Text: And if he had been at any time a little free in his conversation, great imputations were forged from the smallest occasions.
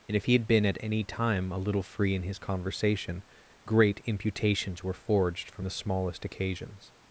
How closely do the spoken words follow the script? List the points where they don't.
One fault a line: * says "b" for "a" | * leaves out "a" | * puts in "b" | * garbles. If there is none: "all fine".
all fine